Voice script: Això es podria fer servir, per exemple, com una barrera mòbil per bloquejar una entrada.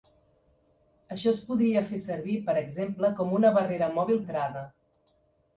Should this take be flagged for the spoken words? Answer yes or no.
yes